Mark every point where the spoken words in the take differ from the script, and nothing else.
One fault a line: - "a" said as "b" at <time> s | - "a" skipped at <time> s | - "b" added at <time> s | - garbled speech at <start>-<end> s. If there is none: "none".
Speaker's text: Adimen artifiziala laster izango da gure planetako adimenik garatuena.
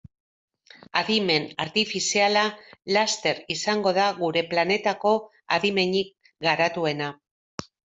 none